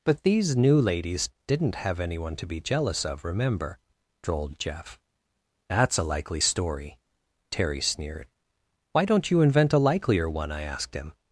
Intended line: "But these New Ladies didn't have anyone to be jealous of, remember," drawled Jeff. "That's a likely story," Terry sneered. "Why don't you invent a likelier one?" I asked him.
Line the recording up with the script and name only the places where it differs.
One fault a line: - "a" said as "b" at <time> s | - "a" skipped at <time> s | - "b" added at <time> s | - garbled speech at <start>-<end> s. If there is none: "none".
none